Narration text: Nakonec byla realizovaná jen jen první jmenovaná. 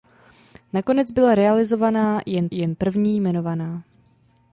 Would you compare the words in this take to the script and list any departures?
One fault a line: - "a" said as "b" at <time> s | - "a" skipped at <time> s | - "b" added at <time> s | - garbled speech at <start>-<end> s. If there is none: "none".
none